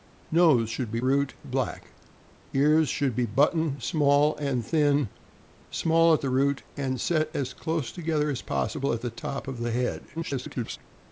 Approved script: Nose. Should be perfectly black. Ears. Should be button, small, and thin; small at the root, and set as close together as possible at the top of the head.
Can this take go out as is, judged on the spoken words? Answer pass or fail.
fail